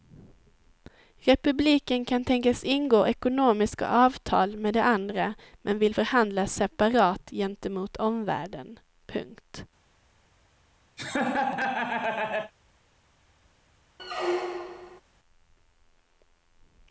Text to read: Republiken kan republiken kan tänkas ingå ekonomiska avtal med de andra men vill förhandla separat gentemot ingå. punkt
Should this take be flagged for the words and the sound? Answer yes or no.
yes